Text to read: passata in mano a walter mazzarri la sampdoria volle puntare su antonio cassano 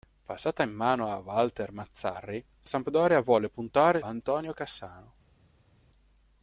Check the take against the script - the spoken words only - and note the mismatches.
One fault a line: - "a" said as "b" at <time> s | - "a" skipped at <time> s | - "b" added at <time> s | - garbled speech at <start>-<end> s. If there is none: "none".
- "la" skipped at 2.4 s
- "su" skipped at 4.0 s